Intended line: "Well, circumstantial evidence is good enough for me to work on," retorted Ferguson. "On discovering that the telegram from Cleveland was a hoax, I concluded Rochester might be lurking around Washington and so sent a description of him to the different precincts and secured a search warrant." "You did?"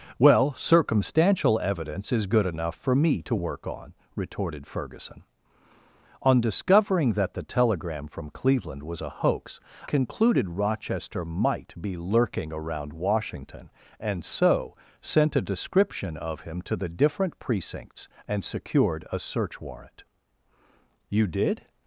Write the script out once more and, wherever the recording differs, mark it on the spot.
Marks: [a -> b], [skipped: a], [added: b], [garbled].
"Well, circumstantial evidence is good enough for me to work on," retorted Ferguson. "On discovering that the telegram from Cleveland was a hoax, [skipped: I] concluded Rochester might be lurking around Washington and so sent a description of him to the different precincts and secured a search warrant." "You did?"